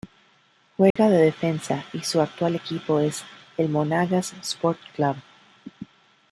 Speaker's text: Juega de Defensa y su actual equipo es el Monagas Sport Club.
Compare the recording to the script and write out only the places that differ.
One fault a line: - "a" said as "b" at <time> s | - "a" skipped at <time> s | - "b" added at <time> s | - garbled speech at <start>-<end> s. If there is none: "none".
none